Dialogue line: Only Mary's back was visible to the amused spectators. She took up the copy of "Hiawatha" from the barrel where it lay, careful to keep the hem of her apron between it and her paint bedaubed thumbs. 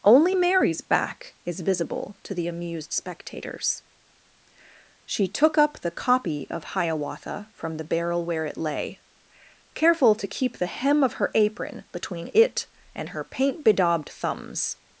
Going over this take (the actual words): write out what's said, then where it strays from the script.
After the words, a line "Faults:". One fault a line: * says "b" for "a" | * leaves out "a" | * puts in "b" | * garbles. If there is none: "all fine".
Only Mary's back is visible to the amused spectators. She took up the copy of "Hiawatha" from the barrel where it lay, careful to keep the hem of her apron between it and her paint bedaubed thumbs.
Faults:
* says "is" for "was"